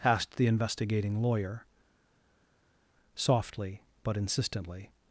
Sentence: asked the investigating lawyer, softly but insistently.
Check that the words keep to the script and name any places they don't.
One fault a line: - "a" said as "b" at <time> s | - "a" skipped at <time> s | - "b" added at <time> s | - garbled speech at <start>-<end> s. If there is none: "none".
none